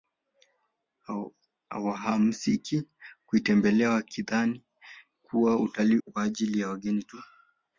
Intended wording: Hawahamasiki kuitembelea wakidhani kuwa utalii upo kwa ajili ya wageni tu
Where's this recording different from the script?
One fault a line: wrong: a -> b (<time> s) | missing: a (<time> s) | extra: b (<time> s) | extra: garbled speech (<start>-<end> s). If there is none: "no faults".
missing: upo (6.0 s)